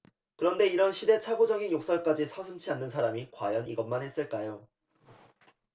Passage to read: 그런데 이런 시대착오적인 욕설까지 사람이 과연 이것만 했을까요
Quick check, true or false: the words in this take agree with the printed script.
false